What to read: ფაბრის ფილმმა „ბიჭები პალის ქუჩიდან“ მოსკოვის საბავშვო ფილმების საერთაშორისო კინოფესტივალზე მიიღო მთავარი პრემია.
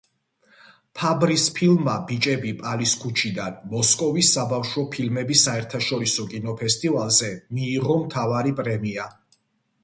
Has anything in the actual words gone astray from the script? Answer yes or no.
no